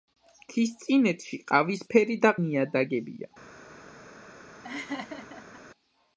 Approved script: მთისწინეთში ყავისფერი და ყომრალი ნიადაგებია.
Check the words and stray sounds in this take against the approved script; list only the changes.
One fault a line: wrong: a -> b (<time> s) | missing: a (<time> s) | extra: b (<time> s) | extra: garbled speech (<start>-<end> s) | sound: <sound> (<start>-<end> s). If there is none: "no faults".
missing: ყომრალი (2.3 s)
sound: laugh (4.6-5.6 s)